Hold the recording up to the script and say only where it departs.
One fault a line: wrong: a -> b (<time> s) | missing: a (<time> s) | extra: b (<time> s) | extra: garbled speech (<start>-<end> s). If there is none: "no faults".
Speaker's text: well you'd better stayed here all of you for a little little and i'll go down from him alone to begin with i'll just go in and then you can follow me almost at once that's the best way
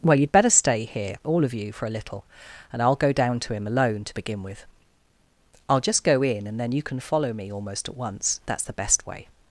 wrong: stayed -> stay (0.5 s)
missing: little (2.2 s)
wrong: from -> to (3.4 s)